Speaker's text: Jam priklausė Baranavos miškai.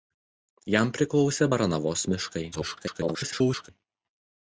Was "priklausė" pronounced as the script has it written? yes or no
yes